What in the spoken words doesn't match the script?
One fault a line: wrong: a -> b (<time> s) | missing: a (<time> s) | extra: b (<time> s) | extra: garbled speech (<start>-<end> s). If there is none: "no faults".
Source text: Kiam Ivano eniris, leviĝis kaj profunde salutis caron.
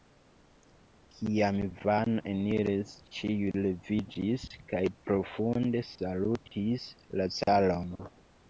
extra: ĉiuj (3.2 s)
extra: la (7.2 s)